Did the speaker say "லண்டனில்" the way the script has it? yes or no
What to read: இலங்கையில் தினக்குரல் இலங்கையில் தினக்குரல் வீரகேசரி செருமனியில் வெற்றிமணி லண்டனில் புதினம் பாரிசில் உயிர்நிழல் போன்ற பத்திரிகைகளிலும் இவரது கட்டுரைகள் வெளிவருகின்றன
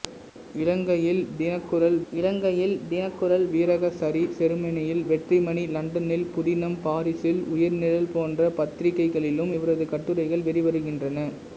yes